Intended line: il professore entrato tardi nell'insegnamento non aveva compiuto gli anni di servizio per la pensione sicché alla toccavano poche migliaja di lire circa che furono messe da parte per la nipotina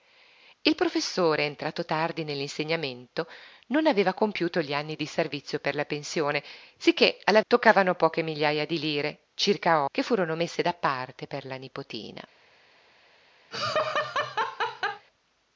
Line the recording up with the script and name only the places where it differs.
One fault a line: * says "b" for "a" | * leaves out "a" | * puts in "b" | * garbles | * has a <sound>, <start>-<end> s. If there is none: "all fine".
* has a laugh, 13.5-15.1 s